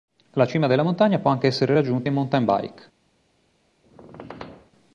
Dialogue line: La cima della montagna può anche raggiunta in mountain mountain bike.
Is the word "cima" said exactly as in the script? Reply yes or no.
yes